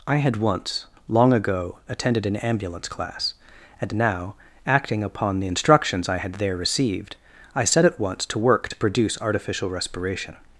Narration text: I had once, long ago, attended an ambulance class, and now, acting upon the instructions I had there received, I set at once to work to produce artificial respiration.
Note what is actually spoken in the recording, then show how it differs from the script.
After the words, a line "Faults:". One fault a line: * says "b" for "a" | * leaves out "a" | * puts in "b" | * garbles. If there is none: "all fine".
I had once, long ago, attended an ambulance class, and now, acting upon the instructions I had there received, I set at once to work to produce artificial respiration.
Faults:
all fine